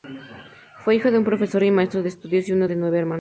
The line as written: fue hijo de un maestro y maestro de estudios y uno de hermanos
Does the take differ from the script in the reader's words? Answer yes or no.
yes